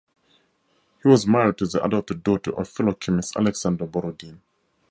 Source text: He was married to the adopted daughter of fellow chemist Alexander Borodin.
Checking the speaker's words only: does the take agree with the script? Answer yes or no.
yes